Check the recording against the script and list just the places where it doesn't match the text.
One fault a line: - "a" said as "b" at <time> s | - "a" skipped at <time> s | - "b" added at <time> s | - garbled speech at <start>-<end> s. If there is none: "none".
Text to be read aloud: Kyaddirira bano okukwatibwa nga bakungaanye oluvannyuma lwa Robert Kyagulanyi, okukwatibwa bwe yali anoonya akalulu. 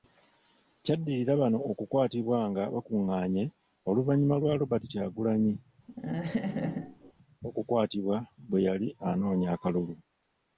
none